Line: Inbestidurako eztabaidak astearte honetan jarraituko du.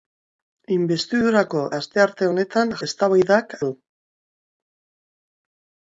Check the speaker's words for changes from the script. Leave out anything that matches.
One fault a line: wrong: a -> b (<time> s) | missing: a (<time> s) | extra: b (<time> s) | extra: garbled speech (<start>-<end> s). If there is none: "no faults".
missing: eztabaidak (1.6 s)
wrong: jarraituko -> eztabaidak (2.9 s)